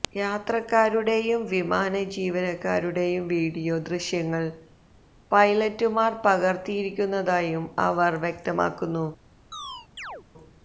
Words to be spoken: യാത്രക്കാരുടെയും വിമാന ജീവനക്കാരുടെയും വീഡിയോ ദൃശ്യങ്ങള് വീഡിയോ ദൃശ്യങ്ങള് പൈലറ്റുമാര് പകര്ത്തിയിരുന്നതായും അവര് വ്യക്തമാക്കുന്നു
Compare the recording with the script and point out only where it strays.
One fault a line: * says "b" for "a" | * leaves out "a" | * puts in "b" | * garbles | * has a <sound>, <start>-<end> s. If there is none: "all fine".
* leaves out "വീഡിയോ ദൃശ്യങ്ങള്"
* has a chirp, 9.5-10.2 s